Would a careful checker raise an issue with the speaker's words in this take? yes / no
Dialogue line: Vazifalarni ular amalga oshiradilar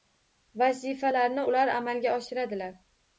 no